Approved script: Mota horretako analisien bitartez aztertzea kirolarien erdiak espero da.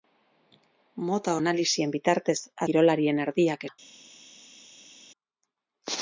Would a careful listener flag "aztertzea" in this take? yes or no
yes